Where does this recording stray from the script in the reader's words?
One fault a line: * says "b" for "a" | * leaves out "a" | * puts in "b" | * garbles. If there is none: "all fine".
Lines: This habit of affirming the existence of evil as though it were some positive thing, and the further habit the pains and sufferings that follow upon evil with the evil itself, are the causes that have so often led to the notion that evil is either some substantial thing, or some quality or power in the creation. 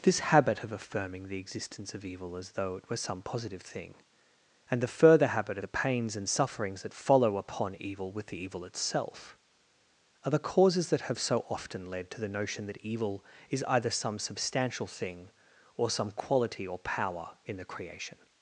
all fine